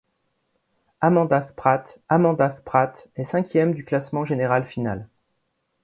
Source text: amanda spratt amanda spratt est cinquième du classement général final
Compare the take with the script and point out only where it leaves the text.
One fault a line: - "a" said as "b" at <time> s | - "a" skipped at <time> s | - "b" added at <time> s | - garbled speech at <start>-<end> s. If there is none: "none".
none